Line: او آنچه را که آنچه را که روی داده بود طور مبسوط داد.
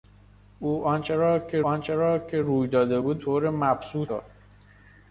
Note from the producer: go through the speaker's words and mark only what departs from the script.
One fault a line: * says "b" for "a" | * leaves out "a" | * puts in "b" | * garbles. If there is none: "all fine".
all fine